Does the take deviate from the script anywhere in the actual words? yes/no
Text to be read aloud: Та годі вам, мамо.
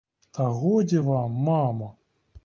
no